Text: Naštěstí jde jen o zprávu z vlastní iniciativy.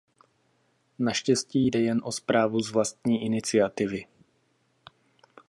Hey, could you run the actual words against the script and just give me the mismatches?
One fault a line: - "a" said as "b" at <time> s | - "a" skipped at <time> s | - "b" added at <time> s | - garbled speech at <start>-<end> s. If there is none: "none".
none